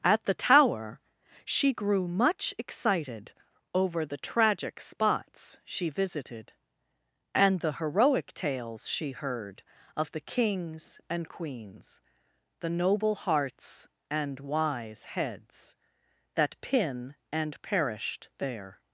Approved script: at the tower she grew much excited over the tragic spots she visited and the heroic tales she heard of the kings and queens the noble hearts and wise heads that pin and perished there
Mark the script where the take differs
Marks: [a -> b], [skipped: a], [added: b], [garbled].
at the tower she grew much excited over the tragic spots she visited and the heroic tales she heard of the kings and queens the noble hearts and wise heads that pin and perished there